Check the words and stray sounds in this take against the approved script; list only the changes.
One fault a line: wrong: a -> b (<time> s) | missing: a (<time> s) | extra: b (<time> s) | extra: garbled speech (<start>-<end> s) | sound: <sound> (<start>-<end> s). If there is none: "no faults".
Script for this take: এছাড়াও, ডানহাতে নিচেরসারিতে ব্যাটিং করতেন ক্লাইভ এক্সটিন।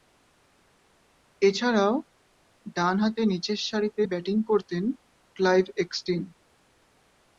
no faults